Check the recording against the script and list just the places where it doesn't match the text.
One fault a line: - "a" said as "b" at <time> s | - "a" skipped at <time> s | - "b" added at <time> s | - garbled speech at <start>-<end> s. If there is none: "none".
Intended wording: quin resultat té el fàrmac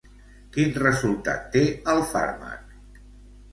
none